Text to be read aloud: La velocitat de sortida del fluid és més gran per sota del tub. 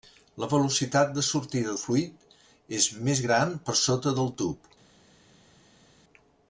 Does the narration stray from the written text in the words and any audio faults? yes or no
yes